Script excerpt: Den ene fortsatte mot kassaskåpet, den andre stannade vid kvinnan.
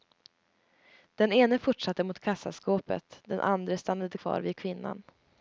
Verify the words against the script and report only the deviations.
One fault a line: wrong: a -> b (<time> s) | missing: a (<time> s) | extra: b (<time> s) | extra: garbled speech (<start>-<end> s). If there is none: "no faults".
extra: kvar (4.1 s)